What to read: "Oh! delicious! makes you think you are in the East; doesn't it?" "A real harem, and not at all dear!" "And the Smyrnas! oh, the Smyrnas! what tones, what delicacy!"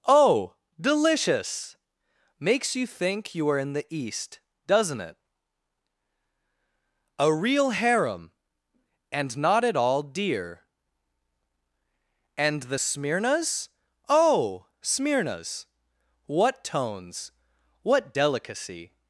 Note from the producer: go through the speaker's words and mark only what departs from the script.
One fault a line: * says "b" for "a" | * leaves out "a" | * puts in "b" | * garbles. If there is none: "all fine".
* leaves out "the"